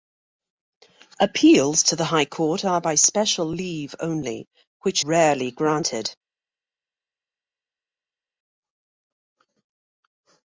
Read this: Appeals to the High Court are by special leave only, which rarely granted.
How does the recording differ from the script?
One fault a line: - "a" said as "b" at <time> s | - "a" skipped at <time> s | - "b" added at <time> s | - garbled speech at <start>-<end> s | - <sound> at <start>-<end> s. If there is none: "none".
none